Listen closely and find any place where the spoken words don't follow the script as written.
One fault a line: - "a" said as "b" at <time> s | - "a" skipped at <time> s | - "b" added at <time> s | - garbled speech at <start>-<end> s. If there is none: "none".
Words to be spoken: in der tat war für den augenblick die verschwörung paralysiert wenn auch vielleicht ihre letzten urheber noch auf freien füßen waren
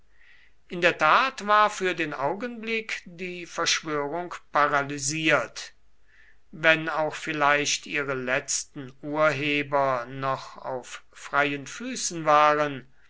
none